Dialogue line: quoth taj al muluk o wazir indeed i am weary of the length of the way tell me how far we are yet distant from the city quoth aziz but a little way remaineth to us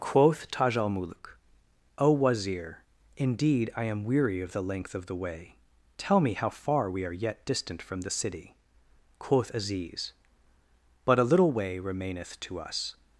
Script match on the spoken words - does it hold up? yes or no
yes